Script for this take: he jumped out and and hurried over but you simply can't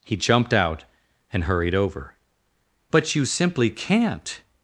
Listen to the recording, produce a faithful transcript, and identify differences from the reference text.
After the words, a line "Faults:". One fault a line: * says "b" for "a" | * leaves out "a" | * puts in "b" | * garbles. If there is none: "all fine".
he jumped out and hurried over but you simply can't
Faults:
* leaves out "and"